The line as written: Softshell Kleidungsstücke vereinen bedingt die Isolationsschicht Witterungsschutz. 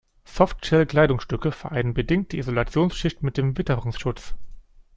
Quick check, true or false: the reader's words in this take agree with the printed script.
false